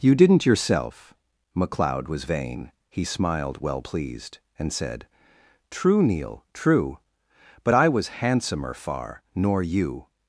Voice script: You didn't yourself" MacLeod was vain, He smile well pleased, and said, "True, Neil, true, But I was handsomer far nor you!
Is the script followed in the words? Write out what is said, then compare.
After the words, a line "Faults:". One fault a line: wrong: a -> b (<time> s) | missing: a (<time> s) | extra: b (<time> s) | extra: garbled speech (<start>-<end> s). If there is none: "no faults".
You didn't yourself" MacLeod was vain, He smiled well pleased, and said, "True, Neil, true, But I was handsomer far nor you!
Faults:
wrong: smile -> smiled (3.0 s)